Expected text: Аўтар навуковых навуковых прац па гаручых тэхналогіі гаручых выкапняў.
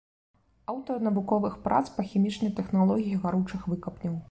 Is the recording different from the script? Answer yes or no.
yes